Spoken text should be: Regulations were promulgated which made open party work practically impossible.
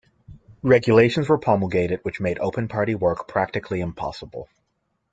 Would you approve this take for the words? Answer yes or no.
yes